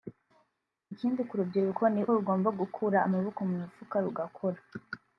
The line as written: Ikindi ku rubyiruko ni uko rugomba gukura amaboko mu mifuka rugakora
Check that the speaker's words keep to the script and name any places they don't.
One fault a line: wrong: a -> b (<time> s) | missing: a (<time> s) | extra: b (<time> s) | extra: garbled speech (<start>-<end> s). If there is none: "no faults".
missing: uko (2.0 s)